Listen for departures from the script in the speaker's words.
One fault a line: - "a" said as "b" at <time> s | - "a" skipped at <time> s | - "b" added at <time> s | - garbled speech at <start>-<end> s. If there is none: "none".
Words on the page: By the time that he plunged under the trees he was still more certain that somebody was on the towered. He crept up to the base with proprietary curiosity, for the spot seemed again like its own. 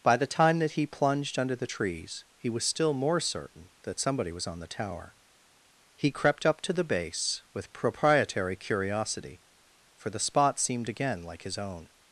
- "towered" said as "tower" at 4.7 s
- "its" said as "his" at 11.4 s